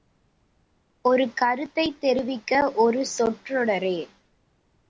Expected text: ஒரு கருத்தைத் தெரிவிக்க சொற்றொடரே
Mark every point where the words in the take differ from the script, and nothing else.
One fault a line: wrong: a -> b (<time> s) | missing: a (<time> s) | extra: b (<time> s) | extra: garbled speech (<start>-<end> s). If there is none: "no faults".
extra: ஒரு (2.8 s)